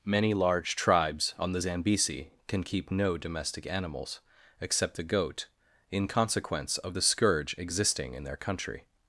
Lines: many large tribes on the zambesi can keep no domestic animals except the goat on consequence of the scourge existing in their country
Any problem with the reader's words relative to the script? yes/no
yes